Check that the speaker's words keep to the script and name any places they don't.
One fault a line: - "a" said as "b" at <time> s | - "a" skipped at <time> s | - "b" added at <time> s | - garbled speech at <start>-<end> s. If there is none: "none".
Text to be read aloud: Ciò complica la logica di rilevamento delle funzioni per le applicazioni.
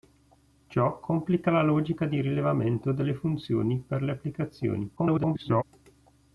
- garbled speech at 5.0-5.6 s